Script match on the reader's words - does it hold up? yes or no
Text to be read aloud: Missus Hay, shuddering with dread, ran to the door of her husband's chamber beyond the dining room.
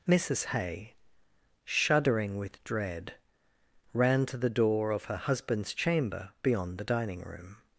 yes